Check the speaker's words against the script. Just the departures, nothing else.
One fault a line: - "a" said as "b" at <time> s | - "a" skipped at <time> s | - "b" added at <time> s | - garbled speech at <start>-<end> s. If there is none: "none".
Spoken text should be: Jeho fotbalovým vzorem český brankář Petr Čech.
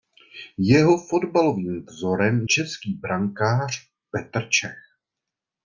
none